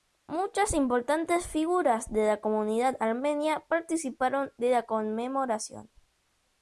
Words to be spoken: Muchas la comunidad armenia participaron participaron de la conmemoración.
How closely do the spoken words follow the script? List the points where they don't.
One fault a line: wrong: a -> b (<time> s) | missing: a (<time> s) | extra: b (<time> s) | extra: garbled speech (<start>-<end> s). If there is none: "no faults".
extra: importantes figuras de (0.7 s)
missing: participaron (4.5 s)